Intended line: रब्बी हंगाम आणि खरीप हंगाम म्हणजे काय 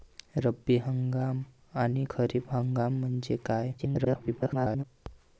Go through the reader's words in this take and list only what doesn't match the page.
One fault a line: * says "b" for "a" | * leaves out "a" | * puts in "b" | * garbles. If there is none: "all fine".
* garbles